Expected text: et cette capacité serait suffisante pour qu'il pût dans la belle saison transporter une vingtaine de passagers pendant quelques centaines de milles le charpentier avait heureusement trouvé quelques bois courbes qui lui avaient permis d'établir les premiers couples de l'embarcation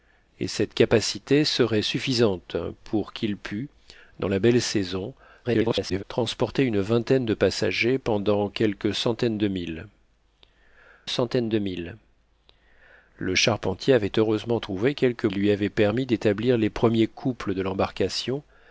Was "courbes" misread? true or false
true